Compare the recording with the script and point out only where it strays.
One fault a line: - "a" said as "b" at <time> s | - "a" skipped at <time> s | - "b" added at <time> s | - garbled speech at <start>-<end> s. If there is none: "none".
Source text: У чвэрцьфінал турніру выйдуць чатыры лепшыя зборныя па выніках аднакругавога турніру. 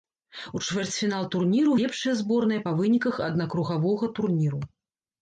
- "выйдуць чатыры" skipped at 1.7 s